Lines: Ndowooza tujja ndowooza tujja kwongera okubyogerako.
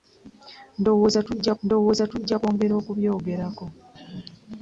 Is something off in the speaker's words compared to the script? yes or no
no